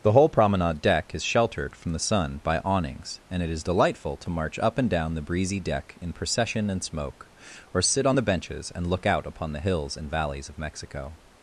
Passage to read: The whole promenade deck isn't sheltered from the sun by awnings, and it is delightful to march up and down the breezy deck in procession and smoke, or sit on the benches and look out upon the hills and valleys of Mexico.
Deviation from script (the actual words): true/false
true